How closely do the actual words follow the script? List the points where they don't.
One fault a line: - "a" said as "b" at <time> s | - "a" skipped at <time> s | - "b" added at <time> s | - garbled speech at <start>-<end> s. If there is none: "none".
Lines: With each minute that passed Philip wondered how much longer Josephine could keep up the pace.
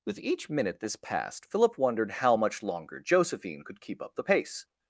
- "that" said as "this" at 0.8 s